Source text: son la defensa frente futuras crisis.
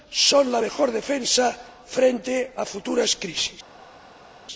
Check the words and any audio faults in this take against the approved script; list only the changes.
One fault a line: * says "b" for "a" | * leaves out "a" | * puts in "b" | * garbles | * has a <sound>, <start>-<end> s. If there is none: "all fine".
* puts in "mejor"
* puts in "a"